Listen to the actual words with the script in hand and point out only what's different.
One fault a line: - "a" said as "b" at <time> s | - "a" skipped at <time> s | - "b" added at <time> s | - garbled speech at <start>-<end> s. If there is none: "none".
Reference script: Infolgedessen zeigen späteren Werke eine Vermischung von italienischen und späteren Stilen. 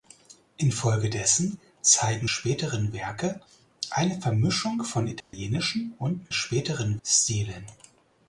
none